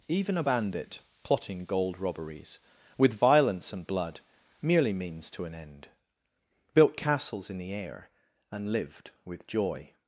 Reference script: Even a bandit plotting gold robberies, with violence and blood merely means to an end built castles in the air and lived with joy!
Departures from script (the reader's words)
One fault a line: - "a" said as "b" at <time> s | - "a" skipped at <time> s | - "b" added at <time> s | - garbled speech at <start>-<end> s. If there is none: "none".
none